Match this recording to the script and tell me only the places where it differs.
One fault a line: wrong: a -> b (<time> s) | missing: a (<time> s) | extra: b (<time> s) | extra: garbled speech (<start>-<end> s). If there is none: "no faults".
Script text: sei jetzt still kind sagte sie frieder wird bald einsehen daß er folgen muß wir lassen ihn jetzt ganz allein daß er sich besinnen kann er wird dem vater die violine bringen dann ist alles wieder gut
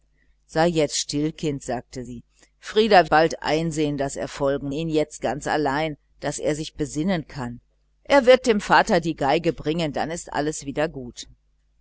missing: wird (3.1 s)
missing: muß wir lassen (4.7 s)